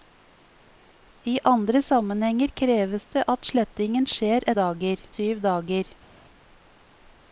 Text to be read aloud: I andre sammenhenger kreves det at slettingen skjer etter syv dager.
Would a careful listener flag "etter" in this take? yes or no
yes